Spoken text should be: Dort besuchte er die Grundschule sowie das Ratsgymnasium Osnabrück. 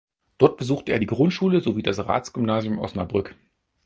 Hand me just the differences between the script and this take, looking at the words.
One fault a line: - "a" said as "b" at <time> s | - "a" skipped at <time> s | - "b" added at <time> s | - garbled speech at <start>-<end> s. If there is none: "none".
none